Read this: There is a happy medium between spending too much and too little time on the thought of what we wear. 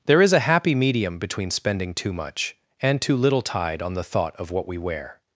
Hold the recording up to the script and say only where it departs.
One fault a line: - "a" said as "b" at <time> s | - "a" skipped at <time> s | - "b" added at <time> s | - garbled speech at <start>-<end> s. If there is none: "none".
- "time" said as "tide" at 3.4 s